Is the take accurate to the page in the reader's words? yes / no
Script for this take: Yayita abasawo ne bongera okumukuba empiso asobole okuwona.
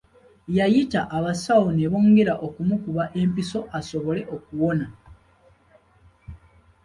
yes